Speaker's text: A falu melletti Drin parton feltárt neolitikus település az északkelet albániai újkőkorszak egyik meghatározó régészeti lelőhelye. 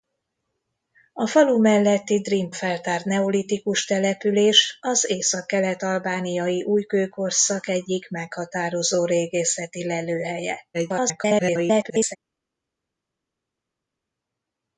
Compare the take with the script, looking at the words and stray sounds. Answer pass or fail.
fail